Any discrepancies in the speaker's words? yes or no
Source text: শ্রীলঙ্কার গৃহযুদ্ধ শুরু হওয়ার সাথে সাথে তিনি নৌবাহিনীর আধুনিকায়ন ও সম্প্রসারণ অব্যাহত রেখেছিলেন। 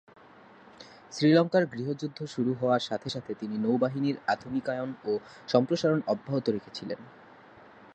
no